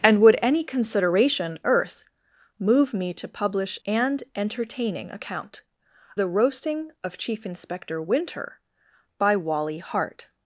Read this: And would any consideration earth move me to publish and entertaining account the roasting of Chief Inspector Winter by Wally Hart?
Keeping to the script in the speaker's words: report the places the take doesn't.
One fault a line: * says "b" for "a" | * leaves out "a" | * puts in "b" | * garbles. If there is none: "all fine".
all fine